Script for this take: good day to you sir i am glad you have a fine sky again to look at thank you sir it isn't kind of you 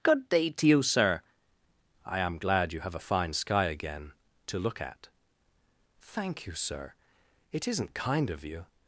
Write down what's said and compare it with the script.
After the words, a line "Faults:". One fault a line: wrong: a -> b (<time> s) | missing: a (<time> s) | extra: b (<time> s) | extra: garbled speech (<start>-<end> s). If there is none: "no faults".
good day to you sir i am glad you have a fine sky again to look at thank you sir it isn't kind of you
Faults:
no faults